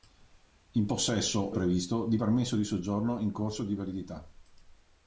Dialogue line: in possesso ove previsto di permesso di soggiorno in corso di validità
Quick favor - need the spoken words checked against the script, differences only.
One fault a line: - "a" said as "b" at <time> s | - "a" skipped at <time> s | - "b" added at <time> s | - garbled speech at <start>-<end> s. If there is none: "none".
- "ove" skipped at 1.6 s